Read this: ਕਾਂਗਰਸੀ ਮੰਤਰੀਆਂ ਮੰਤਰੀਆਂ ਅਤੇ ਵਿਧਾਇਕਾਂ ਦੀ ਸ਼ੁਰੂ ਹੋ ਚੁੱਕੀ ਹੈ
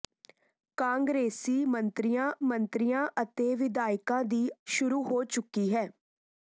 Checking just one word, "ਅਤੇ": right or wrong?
right